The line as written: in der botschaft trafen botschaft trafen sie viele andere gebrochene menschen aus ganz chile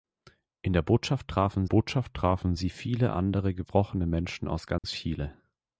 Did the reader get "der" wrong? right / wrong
right